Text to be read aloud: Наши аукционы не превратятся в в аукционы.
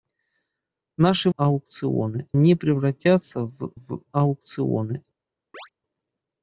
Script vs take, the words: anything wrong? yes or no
no